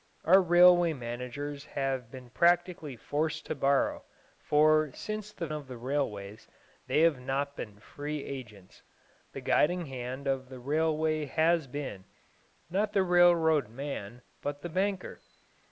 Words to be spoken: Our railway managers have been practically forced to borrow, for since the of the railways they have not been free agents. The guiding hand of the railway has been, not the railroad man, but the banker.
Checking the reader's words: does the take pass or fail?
pass